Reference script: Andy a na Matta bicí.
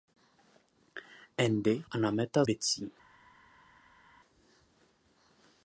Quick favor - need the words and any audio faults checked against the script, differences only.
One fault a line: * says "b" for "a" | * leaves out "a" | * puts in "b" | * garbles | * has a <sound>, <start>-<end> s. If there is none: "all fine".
all fine